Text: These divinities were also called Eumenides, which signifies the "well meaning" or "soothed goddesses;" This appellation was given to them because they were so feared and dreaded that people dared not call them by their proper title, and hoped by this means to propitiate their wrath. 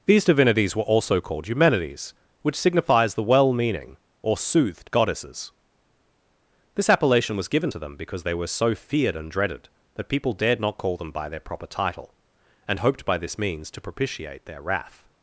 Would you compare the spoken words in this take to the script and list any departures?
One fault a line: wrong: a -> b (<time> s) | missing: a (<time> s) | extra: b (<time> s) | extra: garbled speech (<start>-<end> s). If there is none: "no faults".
no faults